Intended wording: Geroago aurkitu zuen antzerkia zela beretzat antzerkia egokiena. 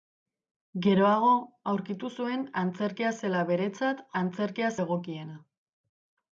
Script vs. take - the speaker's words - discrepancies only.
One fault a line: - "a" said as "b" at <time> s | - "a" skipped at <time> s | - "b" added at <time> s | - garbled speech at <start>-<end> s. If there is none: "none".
none